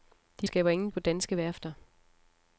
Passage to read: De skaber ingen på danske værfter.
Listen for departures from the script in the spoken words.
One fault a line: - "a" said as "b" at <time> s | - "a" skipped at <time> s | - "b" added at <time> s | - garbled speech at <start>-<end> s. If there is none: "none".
none